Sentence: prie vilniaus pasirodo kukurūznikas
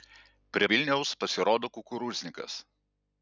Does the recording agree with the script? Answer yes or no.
yes